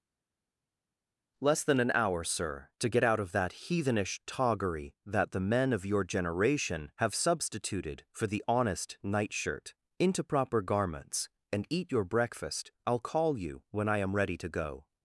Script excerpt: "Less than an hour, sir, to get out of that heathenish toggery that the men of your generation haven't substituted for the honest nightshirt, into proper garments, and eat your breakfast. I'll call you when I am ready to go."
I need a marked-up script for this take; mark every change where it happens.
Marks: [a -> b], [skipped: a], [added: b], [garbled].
"Less than an hour, sir, to get out of that heathenish toggery that the men of your generation [haven't -> have] substituted for the honest nightshirt, into proper garments, and eat your breakfast. I'll call you when I am ready to go."